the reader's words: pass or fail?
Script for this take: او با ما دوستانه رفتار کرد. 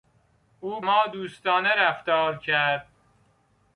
fail